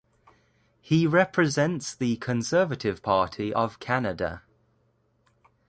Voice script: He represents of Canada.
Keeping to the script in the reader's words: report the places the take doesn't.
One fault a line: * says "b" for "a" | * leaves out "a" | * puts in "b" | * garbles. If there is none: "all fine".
* puts in "the Conservative Party"